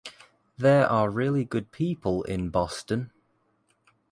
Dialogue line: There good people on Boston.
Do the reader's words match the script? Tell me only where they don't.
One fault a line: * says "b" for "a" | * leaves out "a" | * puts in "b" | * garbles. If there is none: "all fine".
* puts in "are really"
* says "in" for "on"